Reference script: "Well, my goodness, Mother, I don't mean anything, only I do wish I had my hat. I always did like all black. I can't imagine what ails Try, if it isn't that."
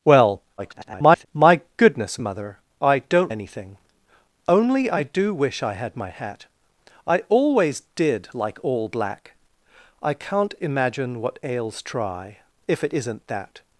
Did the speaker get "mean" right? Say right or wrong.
wrong